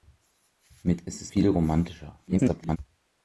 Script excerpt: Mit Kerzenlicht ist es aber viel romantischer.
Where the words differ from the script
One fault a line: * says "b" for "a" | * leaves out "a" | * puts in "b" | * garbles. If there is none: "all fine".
* leaves out "Kerzenlicht"
* leaves out "aber"
* garbles